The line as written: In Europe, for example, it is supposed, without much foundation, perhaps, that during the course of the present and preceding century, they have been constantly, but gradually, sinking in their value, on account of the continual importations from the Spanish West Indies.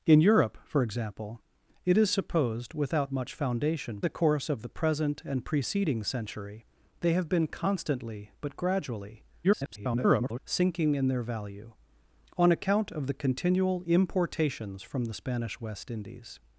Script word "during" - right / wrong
wrong